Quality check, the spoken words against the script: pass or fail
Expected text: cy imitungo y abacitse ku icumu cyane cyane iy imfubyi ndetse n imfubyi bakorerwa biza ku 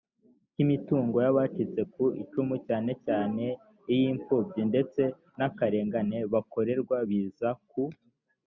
fail